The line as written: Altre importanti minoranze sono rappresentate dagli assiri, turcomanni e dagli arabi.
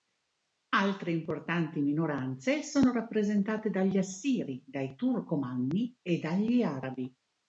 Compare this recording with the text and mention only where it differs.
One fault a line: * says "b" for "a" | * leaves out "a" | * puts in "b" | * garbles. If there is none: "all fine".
* puts in "dai"